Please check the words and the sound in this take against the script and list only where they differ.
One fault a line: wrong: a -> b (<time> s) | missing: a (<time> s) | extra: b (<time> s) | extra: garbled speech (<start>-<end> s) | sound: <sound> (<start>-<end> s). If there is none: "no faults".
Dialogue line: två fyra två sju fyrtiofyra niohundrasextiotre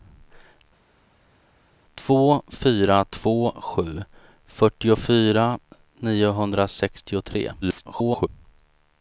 extra: garbled speech (7.6-8.3 s)